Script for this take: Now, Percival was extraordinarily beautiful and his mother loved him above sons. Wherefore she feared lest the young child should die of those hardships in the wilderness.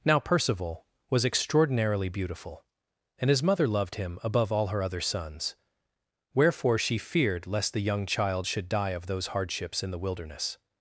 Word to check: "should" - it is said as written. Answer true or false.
true